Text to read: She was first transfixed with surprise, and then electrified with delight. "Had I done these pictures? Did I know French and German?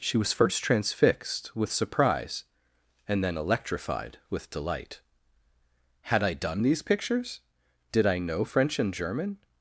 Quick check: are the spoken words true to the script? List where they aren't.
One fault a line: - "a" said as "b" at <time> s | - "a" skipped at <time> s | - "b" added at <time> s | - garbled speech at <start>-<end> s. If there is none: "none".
none